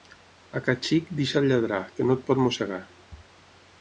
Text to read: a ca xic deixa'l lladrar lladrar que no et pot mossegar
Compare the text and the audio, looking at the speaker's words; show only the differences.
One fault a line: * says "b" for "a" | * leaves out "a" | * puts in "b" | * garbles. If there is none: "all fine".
* leaves out "lladrar"